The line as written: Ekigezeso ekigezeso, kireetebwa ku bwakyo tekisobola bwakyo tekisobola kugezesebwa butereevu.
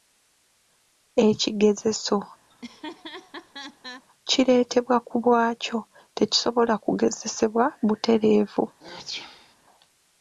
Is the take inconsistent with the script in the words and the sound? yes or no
yes